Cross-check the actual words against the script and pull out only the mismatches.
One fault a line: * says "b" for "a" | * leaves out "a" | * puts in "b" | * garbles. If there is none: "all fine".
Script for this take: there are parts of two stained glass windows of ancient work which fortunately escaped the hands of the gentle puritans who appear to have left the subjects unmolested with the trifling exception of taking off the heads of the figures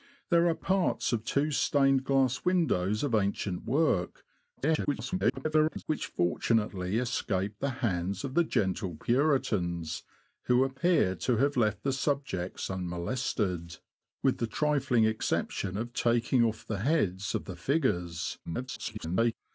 * garbles
* garbles